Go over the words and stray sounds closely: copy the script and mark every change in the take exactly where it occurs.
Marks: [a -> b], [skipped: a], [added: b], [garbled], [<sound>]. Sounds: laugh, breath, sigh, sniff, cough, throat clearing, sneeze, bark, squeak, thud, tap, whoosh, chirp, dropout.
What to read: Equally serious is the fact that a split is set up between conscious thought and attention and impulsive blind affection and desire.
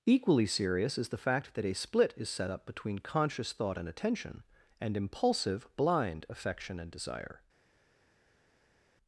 Equally serious is the fact that a split is set up between conscious thought and attention and impulsive blind affection and desire.